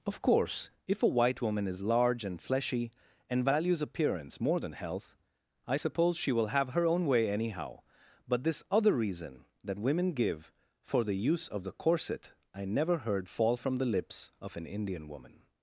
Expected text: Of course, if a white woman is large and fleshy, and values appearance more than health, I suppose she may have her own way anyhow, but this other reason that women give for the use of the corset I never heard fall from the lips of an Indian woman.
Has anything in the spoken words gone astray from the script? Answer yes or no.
yes